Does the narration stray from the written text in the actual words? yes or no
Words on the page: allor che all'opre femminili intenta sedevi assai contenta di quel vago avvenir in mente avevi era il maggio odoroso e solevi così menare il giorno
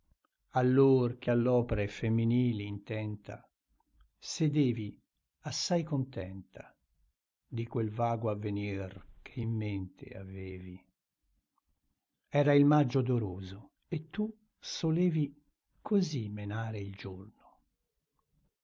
yes